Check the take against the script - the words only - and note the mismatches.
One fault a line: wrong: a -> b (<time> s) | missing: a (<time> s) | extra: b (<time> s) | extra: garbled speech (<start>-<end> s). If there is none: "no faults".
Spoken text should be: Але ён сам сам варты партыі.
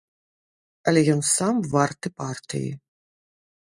missing: сам (1.6 s)